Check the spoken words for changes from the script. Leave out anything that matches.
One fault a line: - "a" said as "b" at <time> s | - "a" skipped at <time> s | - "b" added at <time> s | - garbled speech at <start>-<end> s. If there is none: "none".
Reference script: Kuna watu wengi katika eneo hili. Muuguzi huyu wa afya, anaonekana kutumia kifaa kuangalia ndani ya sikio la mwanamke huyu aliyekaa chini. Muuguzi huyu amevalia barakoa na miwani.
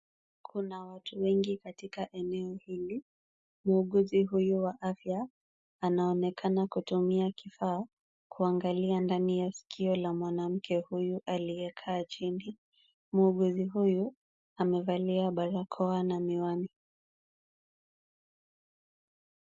none